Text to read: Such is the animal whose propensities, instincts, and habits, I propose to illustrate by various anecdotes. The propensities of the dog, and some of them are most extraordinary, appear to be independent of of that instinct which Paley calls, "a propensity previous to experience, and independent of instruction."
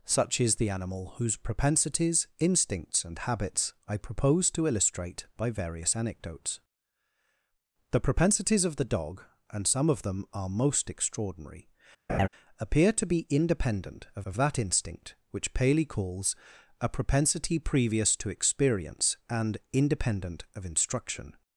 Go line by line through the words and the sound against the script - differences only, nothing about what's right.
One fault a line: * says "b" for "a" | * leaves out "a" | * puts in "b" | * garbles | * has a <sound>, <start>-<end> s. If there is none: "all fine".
* has a laugh, 12.1-12.3 s